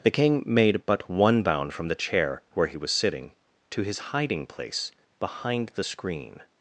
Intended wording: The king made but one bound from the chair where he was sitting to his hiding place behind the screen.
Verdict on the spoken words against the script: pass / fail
pass